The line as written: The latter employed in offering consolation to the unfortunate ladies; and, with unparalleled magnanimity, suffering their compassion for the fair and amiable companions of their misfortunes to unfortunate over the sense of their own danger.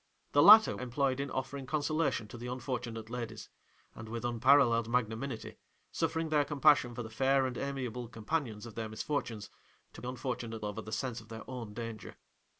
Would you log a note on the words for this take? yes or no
no